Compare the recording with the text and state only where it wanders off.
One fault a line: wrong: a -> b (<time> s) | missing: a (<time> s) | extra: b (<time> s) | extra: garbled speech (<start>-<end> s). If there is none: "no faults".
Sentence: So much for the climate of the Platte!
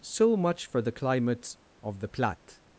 wrong: climate -> climates (0.9 s)